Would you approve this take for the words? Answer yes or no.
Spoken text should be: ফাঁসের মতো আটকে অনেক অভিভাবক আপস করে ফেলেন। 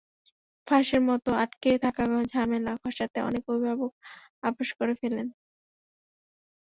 no